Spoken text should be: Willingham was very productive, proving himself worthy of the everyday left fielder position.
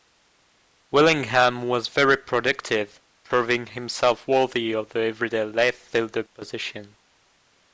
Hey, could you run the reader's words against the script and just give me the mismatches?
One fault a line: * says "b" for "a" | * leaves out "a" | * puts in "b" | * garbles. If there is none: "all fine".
all fine